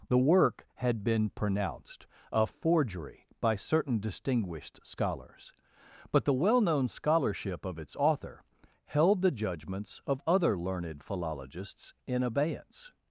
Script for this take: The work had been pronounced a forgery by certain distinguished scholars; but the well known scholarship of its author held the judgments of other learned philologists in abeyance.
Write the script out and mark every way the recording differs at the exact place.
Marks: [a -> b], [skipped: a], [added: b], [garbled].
The work had been pronounced a forgery by certain distinguished scholars; but the well known scholarship of its author held the judgments of other learned philologists in abeyance.